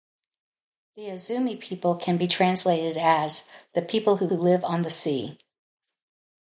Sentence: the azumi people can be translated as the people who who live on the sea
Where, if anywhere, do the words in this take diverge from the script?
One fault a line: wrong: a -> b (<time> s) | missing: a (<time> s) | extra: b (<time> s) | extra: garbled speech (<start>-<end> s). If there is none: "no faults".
no faults